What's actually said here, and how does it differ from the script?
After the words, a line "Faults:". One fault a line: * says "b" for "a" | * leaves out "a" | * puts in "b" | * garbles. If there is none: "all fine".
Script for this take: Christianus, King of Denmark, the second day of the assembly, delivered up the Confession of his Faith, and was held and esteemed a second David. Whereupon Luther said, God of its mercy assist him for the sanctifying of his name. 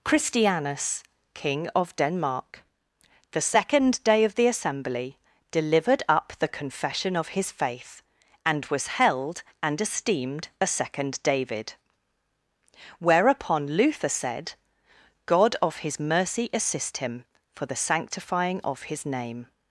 Christianus, King of Denmark, the second day of the assembly, delivered up the Confession of his Faith, and was held and esteemed a second David. Whereupon Luther said, God of his mercy assist him for the sanctifying of his name.
Faults:
* says "his" for "its"